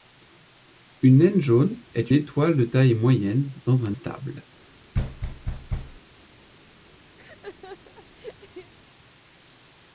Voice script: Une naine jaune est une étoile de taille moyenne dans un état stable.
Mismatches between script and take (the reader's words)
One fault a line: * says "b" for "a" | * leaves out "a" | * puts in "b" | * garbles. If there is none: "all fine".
* leaves out "une"
* leaves out "état"